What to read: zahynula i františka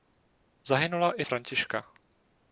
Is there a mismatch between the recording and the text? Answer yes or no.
no